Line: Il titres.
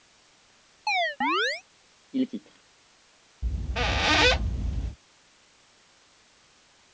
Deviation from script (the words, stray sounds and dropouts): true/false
true